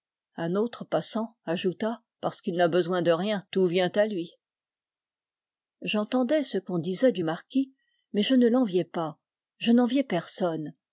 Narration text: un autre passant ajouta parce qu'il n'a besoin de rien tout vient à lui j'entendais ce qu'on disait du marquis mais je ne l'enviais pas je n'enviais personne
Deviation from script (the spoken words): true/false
false